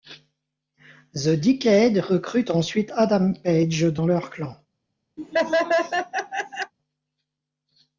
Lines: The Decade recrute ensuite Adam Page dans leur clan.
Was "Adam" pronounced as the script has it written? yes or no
yes